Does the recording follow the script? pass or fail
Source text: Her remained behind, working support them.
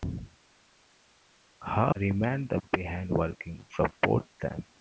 pass